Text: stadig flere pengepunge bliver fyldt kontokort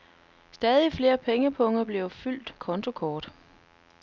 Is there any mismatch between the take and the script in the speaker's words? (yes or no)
no